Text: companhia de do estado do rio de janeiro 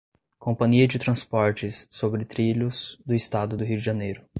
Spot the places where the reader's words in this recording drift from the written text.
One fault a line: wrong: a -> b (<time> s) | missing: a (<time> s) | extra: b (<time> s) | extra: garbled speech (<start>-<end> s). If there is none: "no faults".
extra: transportes sobre trilhos (1.0 s)